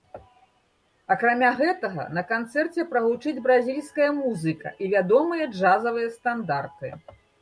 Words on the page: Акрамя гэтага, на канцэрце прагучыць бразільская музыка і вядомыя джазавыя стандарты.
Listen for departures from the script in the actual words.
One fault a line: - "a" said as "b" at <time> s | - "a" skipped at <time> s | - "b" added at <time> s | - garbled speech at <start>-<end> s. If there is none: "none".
none